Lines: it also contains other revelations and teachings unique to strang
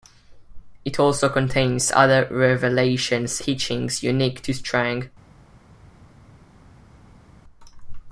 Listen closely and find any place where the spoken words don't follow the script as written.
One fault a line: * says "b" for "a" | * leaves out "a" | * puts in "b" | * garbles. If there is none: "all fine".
* leaves out "and"